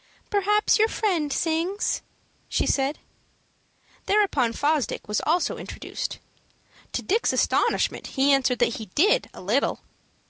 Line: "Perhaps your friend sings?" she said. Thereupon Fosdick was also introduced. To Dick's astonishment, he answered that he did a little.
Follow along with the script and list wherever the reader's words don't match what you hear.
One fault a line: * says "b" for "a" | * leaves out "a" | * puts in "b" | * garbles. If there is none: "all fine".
all fine